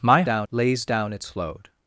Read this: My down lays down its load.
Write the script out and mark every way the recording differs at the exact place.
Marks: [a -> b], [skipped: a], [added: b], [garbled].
My down lays down its load.